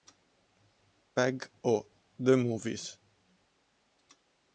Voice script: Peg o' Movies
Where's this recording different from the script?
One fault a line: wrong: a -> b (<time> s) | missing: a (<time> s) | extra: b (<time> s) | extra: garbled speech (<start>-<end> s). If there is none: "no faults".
extra: the (2.2 s)